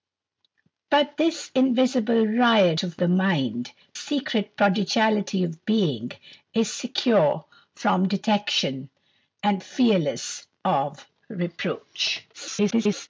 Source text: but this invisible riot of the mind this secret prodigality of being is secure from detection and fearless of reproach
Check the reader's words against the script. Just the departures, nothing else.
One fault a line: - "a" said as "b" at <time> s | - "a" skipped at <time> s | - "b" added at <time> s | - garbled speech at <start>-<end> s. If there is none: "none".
- "this" skipped at 3.7 s
- garbled speech at 12.3-13.1 s